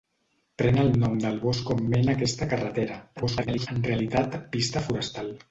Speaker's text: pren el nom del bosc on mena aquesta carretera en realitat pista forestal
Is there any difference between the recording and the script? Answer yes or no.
yes